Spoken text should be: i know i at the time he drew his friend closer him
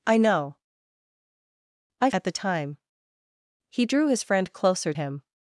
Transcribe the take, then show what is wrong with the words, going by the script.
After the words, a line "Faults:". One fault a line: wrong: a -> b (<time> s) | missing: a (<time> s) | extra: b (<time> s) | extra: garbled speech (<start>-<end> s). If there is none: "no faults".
i know i at the time he drew his friend closer him
Faults:
no faults